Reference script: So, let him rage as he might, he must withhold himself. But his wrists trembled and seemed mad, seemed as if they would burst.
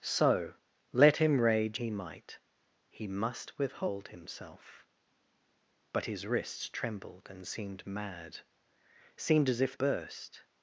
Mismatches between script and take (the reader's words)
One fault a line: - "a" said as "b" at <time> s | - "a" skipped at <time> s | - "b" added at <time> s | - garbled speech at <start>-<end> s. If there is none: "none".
- "as" skipped at 1.8 s
- "they would" skipped at 9.7 s